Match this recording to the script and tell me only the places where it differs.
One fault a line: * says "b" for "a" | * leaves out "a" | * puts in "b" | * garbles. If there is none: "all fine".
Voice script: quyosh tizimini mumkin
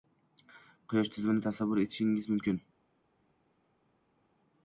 * puts in "tasavvur etishingiz"